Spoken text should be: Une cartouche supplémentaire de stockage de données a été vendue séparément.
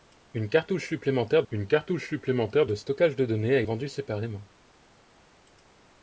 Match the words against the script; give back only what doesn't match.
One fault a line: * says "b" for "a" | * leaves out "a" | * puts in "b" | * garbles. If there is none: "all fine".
* puts in "une cartouche supplémentaire"
* leaves out "été"